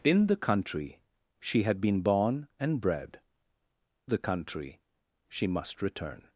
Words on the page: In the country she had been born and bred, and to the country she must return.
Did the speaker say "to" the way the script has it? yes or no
no